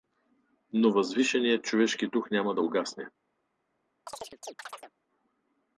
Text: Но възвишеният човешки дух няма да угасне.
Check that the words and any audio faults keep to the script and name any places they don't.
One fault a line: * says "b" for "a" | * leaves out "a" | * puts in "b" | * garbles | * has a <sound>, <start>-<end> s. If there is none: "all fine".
* has a chirp, 4.1-4.9 s